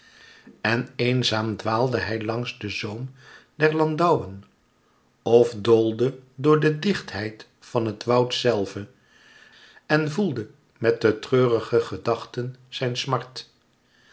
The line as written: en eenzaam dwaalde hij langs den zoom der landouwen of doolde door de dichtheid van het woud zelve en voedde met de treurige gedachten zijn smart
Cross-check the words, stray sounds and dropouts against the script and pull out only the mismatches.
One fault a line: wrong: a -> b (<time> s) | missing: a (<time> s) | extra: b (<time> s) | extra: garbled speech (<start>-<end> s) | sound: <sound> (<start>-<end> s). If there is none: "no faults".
no faults